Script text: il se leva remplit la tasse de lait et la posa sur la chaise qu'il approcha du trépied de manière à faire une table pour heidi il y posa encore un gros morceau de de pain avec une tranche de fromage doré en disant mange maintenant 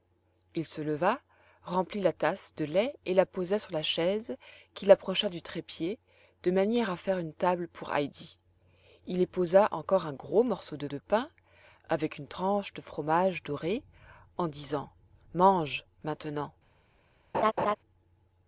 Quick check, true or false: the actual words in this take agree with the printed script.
true